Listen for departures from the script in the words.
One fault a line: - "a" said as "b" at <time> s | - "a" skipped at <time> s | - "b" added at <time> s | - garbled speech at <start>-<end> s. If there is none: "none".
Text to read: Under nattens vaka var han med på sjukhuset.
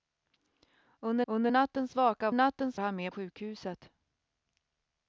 - "under" added at 1.3 s
- "var" said as "nattens" at 2.3 s
- "på" skipped at 3.1 s